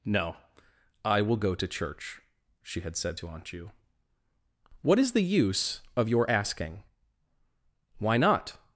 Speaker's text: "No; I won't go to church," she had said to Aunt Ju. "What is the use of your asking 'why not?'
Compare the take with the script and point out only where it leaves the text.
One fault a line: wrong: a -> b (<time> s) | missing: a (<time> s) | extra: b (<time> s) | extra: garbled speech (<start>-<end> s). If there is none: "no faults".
wrong: won't -> will (1.2 s)